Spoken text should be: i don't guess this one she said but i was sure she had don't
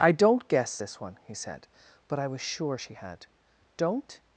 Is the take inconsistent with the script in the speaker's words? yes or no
yes